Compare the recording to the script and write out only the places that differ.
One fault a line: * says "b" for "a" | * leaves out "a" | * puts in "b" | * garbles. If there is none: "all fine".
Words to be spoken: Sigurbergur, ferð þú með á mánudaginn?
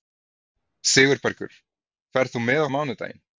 all fine